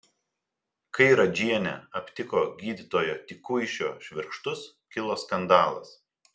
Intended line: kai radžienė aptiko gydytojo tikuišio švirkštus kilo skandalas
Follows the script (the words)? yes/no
yes